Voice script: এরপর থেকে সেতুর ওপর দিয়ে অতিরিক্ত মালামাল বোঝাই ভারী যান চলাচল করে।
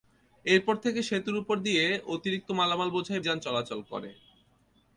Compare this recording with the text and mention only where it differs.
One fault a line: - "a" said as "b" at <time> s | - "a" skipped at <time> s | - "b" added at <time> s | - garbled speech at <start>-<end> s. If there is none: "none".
- "ভারী" skipped at 3.2 s